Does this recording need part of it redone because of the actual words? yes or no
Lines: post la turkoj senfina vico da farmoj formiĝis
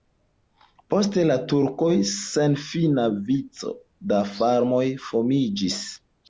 no